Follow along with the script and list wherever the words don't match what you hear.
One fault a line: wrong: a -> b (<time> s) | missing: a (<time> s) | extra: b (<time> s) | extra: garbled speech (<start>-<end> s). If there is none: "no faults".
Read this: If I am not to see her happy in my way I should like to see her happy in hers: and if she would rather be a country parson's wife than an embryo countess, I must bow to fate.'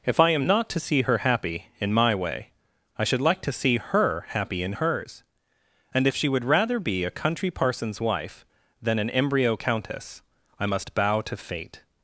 no faults